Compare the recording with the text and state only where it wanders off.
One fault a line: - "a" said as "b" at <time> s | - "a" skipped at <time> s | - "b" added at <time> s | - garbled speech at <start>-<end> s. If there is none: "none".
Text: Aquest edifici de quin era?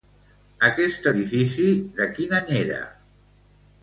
- "any" added at 2.4 s